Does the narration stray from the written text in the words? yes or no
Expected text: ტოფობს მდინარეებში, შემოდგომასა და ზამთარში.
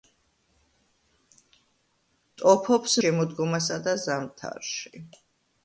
yes